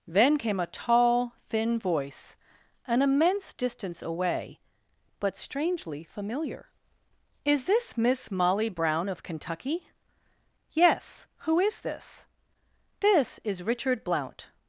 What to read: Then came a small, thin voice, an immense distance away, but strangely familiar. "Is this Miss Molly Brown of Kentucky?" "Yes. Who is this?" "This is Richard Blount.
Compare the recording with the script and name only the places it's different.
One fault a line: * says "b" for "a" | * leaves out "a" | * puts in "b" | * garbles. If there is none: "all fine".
* says "tall" for "small"